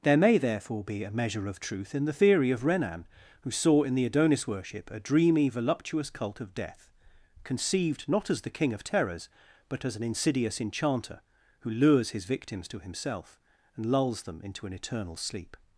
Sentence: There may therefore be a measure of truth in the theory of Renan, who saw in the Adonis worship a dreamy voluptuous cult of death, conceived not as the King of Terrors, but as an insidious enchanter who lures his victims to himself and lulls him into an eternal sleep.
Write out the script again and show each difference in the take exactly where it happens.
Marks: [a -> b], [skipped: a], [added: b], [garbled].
There may therefore be a measure of truth in the theory of Renan, who saw in the Adonis worship a dreamy voluptuous cult of death, conceived not as the King of Terrors, but as an insidious enchanter who lures his victims to himself and lulls [him -> them] into an eternal sleep.